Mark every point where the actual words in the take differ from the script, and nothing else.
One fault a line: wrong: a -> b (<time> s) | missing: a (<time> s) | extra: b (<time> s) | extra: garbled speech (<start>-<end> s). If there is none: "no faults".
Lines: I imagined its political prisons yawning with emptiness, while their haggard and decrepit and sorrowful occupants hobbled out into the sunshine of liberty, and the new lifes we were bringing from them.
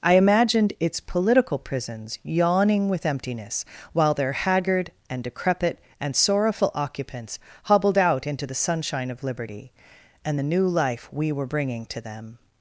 wrong: lifes -> life (10.7 s)
wrong: from -> to (11.9 s)